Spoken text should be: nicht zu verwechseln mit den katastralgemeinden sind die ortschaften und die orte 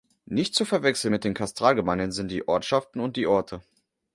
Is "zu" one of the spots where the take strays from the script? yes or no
no